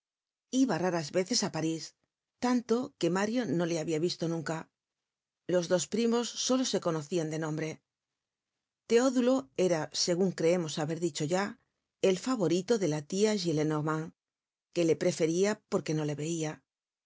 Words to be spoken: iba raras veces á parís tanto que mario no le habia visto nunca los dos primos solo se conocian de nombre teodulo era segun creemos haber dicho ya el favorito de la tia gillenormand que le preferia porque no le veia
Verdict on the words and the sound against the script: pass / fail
pass